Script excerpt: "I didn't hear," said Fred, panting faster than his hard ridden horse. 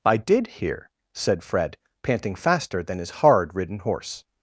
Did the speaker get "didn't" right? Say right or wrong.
wrong